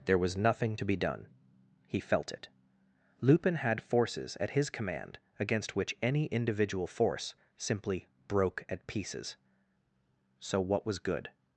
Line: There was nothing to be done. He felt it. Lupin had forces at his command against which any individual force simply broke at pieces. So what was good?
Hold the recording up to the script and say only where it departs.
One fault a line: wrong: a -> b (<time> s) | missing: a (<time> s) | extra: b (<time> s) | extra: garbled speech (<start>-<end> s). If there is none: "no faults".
no faults